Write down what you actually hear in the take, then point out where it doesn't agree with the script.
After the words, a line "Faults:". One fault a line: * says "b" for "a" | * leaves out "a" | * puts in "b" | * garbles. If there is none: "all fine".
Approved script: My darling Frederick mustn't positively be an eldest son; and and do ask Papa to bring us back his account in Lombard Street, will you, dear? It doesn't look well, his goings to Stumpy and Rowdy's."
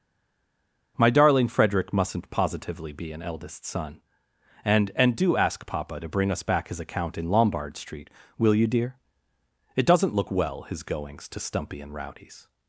My darling Frederick mustn't positively be an eldest son; and and do ask Papa to bring us back his account in Lombard Street, will you, dear? It doesn't look well, his goings to Stumpy and Rowdy's."
Faults:
all fine